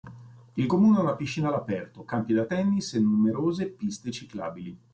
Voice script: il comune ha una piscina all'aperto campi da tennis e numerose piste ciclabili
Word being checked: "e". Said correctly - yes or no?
yes